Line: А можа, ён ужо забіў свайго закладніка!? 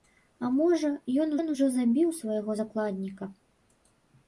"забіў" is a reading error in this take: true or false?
false